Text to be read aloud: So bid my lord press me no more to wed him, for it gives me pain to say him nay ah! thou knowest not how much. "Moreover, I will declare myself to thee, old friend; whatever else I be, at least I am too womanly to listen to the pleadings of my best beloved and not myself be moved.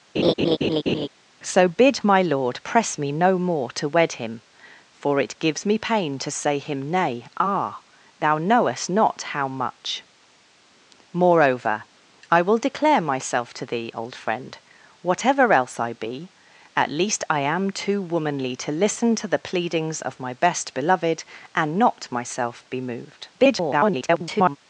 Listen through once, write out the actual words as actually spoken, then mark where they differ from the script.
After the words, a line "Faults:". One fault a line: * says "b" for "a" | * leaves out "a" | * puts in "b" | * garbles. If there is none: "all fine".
So bid my lord press me no more to wed him, for it gives me pain to say him nay ah! thou knowest not how much. "Moreover, I will declare myself to thee, old friend; whatever else I be, at least I am too womanly to listen to the pleadings of my best beloved and not myself be moved. [garbled]
Faults:
* garbles